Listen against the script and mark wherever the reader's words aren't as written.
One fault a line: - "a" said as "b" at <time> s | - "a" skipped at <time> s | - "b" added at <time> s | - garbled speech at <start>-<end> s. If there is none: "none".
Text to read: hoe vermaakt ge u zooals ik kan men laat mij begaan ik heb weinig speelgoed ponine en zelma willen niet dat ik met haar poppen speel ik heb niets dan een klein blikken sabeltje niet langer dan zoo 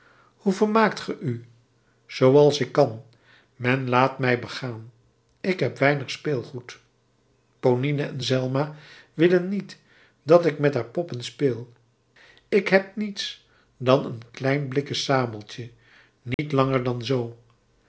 none